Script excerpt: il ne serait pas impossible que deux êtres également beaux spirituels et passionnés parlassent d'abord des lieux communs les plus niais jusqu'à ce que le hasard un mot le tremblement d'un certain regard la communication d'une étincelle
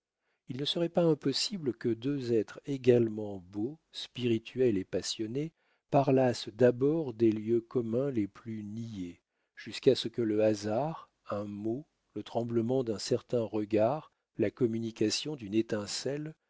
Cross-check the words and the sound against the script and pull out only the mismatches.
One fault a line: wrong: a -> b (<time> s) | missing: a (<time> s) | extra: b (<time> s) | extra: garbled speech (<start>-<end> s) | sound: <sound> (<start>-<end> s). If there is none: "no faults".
no faults